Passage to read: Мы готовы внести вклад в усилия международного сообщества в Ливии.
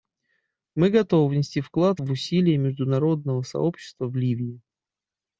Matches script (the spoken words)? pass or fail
pass